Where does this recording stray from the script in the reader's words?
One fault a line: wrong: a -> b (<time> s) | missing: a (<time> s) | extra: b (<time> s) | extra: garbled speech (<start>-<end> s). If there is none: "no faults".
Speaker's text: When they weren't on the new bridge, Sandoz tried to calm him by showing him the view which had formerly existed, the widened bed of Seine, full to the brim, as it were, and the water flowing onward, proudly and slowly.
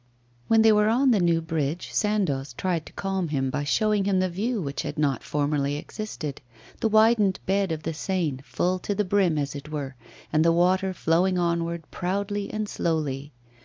wrong: weren't -> were (0.7 s)
extra: not (5.0 s)
extra: the (7.8 s)